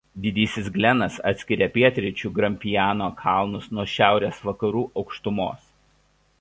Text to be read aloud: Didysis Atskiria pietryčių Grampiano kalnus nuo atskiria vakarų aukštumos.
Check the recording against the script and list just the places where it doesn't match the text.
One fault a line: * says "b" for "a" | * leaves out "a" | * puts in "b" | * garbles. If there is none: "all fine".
* puts in "Glenas"
* says "šiaurės" for "atskiria"